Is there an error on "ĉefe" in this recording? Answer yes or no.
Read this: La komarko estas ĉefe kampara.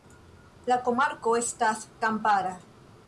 yes